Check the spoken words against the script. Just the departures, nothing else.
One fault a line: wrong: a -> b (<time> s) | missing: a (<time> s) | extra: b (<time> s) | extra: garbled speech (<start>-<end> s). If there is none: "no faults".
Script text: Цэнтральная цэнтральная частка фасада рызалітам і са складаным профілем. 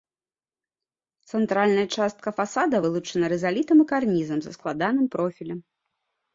missing: цэнтральная (1.8 s)
extra: вылучана (2.8 s)
extra: карнізам (4.0 s)